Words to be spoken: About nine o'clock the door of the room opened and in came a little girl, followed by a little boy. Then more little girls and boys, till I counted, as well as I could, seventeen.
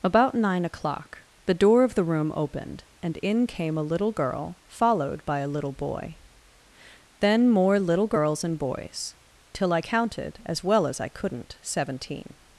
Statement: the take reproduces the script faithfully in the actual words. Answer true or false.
false